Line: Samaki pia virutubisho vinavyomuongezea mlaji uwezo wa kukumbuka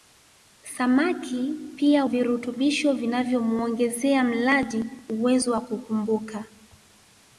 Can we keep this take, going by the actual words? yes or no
yes